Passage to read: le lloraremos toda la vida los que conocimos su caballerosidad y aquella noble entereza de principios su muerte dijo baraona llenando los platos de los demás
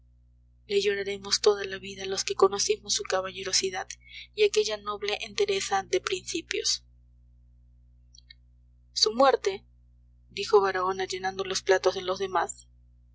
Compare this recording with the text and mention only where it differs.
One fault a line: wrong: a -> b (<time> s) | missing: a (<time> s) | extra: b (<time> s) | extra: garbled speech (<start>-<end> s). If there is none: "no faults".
no faults